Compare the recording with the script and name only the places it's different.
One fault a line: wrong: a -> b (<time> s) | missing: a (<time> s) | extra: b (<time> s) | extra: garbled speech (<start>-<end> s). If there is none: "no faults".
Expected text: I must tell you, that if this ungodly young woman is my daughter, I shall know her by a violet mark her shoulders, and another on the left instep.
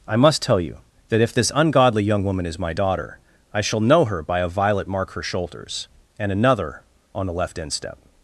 no faults